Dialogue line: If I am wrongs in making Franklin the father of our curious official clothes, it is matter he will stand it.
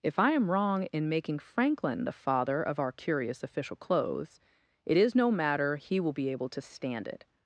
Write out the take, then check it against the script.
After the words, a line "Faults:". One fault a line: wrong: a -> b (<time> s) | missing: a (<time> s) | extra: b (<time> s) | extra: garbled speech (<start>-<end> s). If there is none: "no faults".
If I am wrong in making Franklin the father of our curious official clothes, it is no matter he will be able to stand it.
Faults:
wrong: wrongs -> wrong (0.5 s)
extra: no (5.1 s)
extra: be able to (6.1 s)